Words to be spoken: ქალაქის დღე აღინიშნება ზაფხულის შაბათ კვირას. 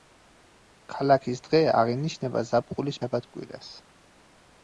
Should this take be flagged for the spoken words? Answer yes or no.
no